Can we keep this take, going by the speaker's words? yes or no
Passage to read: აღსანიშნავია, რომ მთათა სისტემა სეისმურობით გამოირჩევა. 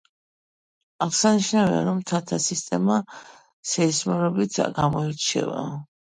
yes